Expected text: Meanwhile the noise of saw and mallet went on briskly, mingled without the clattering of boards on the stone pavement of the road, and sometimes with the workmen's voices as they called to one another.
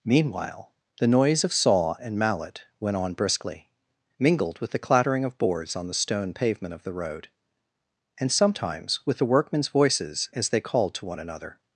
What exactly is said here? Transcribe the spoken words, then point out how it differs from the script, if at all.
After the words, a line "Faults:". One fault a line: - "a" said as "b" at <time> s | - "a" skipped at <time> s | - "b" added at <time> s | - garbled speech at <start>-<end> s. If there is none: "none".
Meanwhile the noise of saw and mallet went on briskly, mingled with the clattering of boards on the stone pavement of the road, and sometimes with the workmen's voices as they called to one another.
Faults:
- "without" said as "with" at 4.6 s